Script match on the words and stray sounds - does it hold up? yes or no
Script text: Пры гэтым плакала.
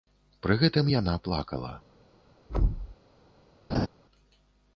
no